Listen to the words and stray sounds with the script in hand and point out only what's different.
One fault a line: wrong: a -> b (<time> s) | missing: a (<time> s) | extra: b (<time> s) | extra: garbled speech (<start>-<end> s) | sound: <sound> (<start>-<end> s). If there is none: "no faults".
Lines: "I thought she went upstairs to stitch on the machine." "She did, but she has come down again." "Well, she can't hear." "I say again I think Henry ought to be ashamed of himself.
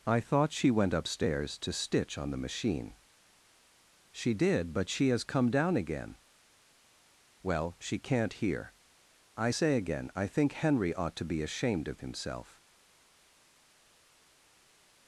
no faults